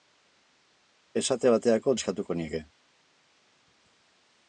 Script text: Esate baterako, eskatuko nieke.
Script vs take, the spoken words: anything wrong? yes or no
no